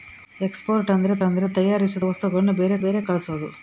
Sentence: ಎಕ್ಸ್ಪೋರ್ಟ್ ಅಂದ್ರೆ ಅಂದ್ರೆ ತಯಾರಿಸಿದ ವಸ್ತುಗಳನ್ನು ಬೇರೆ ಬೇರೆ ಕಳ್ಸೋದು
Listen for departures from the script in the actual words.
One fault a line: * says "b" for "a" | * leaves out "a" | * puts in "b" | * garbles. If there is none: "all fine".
all fine